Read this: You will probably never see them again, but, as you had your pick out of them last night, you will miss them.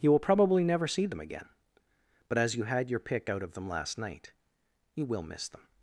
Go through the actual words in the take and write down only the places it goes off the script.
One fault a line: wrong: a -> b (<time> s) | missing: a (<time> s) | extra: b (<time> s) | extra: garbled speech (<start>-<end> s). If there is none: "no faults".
no faults